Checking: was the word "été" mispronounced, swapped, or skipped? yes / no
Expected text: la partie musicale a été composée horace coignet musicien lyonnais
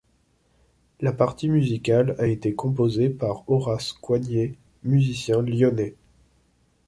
no